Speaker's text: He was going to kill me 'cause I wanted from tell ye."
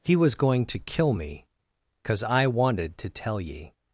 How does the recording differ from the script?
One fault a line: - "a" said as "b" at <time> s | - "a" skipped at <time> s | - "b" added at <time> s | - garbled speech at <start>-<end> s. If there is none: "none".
- "from" said as "to" at 3.0 s